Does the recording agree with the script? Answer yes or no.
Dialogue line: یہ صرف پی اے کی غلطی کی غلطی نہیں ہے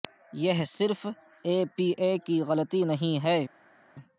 no